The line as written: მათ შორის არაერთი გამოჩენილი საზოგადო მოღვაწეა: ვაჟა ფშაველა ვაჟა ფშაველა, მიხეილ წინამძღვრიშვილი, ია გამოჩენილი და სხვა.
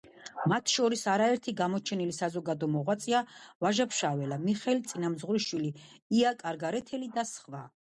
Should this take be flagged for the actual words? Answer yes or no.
yes